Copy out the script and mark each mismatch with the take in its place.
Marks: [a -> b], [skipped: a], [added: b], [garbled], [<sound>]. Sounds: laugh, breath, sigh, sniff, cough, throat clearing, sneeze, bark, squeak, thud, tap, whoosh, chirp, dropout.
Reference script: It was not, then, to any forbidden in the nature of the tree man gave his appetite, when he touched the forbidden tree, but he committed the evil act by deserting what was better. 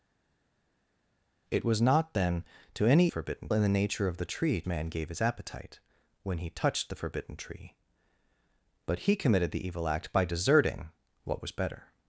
It was not, then, to any forbidden in the nature of the tree man gave his appetite, when he touched the forbidden tree, but he committed the evil act by deserting what was better.